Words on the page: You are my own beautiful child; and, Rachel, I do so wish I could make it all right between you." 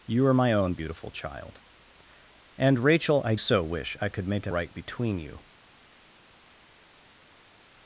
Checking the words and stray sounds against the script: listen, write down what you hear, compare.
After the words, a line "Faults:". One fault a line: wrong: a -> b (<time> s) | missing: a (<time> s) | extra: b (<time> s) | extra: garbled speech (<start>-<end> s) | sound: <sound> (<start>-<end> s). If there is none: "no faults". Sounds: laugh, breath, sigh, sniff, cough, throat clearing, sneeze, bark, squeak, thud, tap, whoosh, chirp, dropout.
You are my own beautiful child; and, Rachel, I so wish I could make it right between you."
Faults:
missing: do (3.4 s)
missing: all (4.5 s)